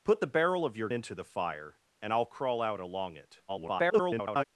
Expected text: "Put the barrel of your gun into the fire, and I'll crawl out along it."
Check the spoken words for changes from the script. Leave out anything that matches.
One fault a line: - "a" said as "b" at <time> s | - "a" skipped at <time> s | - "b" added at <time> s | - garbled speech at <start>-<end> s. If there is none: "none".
- "gun" skipped at 0.9 s
- garbled speech at 3.5-4.4 s